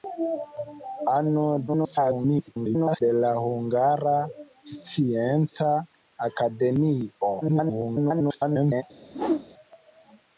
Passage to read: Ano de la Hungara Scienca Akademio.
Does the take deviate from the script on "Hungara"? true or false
false